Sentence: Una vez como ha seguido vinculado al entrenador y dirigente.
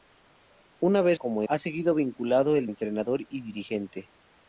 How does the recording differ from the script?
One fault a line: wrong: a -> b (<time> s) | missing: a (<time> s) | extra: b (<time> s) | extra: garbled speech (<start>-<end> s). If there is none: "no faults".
no faults